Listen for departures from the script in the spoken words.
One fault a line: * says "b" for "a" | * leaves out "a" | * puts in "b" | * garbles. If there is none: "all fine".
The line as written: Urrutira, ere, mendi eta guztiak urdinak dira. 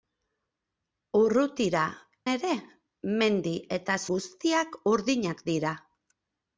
all fine